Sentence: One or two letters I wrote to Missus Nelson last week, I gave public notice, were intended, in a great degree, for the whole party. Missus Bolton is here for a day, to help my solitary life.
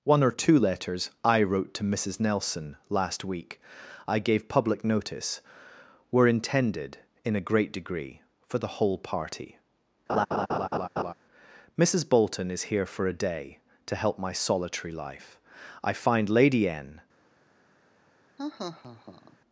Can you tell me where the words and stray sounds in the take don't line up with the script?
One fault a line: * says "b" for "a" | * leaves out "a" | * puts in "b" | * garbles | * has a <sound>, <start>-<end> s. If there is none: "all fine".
* has a laugh, 10.1-11.1 s
* puts in "I find Lady N"
* has a laugh, 18.4-19.4 s